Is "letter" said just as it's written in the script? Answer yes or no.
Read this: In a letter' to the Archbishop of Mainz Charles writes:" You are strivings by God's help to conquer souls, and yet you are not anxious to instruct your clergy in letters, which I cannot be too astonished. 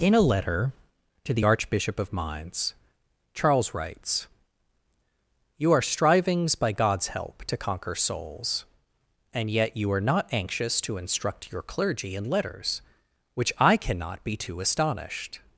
yes